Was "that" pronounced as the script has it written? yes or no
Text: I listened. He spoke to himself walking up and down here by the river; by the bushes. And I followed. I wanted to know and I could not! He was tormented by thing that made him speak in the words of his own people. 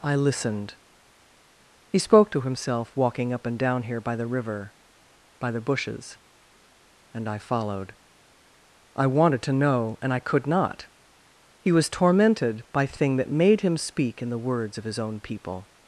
yes